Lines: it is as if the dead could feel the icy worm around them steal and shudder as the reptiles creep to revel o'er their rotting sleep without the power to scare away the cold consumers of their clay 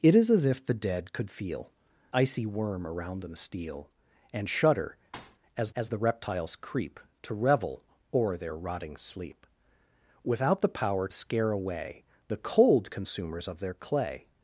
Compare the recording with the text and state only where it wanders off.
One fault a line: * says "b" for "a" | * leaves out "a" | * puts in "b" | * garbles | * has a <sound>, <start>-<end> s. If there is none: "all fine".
* leaves out "the"
* has a thud, 5.1-5.4 s
* puts in "as"
* leaves out "to"